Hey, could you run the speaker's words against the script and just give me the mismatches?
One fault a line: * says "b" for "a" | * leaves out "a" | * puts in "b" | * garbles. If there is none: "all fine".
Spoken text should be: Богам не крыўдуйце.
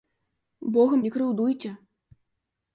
all fine